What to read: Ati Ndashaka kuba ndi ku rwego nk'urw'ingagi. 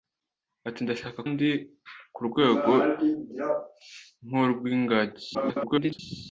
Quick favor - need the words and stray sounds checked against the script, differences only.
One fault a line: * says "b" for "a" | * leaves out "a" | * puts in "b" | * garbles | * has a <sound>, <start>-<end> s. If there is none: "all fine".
* leaves out "kuba"
* garbles